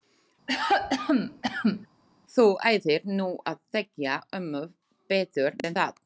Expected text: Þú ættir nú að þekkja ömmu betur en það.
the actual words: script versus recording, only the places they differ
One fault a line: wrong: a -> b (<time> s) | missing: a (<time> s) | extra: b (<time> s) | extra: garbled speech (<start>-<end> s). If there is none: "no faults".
no faults